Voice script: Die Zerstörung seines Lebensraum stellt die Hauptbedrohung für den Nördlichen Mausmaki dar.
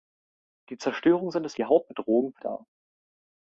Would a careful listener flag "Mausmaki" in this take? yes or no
yes